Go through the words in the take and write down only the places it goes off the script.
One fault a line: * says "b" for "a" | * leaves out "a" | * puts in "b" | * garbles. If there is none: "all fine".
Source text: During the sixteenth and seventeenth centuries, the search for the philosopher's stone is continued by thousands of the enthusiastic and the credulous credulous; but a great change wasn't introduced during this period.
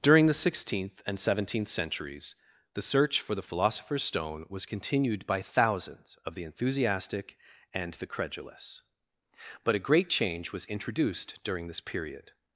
* says "was" for "is"
* leaves out "credulous"
* says "was" for "wasn't"